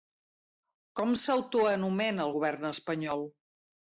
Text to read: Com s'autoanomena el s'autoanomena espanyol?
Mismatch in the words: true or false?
true